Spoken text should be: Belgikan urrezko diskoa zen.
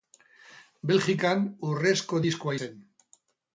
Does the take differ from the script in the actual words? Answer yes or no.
no